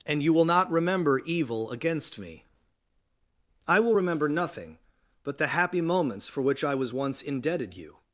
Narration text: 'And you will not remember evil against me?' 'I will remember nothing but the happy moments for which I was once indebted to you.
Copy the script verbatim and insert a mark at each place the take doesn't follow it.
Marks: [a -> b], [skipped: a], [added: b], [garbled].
'And you will not remember evil against me?' 'I will remember nothing but the happy moments for which I was once indebted [skipped: to] you.